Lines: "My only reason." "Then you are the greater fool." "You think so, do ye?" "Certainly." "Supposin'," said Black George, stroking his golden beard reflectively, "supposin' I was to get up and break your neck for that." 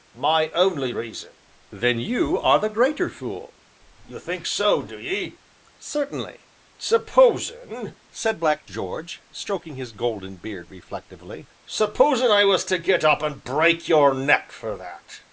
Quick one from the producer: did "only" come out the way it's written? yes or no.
yes